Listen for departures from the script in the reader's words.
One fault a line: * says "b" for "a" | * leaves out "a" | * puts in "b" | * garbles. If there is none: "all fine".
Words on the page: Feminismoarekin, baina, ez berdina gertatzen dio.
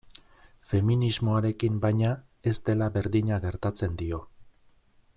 * puts in "dela"